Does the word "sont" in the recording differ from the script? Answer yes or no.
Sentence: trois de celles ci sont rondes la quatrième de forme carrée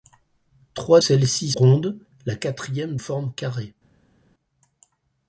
yes